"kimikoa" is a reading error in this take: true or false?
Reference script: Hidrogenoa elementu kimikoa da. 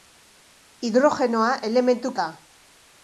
true